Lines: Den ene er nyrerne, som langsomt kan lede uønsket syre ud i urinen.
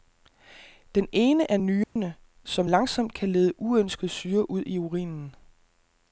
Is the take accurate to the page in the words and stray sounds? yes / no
no